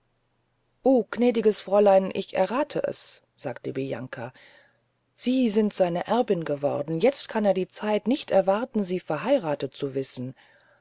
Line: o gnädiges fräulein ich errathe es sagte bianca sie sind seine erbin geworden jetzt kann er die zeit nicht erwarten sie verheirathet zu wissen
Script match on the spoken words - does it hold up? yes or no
yes